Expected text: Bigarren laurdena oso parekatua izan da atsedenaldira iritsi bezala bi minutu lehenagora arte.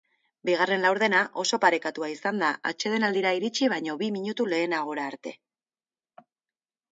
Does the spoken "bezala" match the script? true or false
false